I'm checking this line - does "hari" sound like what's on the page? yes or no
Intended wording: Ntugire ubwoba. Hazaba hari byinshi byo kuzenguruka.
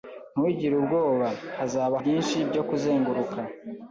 no